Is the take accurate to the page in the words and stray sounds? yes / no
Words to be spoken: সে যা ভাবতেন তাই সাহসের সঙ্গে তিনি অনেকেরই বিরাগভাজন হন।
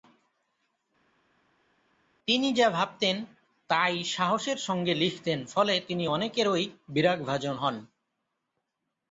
no